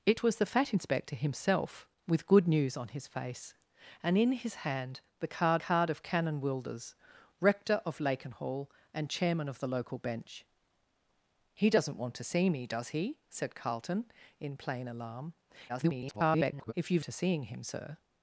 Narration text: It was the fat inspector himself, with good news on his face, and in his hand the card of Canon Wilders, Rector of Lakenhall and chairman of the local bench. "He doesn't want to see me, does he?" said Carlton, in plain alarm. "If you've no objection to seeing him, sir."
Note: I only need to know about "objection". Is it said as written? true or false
false